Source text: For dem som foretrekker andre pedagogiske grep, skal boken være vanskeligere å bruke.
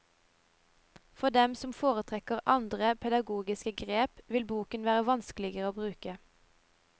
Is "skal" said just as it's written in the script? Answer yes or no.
no